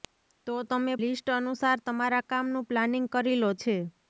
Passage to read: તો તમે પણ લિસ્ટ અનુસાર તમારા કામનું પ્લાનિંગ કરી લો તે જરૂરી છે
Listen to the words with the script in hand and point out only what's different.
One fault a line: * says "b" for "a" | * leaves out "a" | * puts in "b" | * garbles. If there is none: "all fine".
* leaves out "પણ"
* leaves out "તે જરૂરી"